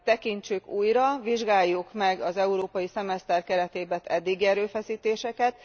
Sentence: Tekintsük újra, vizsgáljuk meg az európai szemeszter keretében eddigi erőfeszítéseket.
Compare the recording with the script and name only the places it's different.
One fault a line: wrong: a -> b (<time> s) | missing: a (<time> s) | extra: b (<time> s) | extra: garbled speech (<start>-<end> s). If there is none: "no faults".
no faults